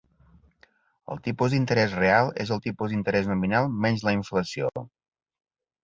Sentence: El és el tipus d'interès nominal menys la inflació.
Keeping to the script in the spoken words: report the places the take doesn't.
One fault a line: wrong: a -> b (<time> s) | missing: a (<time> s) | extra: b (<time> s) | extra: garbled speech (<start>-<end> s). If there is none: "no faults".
extra: tipus d'interès real (1.3 s)